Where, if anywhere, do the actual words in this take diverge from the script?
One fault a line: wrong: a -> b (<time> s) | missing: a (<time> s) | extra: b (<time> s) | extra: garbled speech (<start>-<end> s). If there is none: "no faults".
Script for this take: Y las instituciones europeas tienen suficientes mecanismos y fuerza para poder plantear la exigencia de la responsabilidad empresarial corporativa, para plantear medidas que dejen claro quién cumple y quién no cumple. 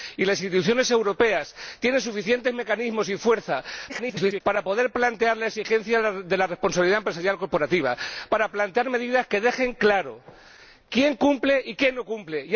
extra: garbled speech (3.9-4.4 s)